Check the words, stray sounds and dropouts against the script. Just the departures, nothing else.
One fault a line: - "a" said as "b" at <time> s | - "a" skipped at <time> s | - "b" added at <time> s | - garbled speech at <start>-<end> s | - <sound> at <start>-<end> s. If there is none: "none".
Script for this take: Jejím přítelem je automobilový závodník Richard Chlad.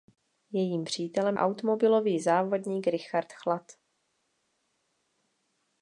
- "je" skipped at 1.4 s